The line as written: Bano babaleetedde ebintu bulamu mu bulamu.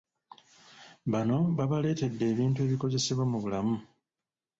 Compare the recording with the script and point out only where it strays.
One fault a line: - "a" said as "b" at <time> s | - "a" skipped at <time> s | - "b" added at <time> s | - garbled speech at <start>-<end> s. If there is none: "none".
- "bulamu" said as "ebikozesebwa" at 2.6 s